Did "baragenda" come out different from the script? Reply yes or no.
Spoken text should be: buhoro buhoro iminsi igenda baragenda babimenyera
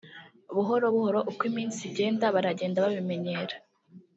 no